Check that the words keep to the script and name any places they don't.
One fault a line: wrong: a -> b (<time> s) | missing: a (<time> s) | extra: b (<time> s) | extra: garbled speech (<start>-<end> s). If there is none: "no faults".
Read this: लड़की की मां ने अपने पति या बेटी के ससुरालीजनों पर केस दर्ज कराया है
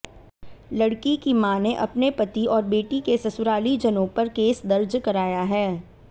wrong: या -> और (2.5 s)